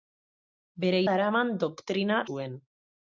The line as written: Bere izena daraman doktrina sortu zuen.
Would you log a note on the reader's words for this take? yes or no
yes